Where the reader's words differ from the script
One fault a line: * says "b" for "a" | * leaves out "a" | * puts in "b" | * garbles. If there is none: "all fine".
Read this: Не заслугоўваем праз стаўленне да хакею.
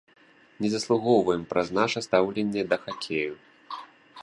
* puts in "наша"